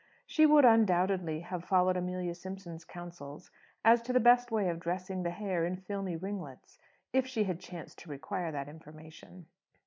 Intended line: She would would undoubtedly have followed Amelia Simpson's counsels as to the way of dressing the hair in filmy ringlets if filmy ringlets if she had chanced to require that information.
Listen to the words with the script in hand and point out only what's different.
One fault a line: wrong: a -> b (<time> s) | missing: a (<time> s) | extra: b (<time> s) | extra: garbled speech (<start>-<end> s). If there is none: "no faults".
missing: would (0.7 s)
extra: best (4.2 s)
missing: filmy ringlets if (7.2 s)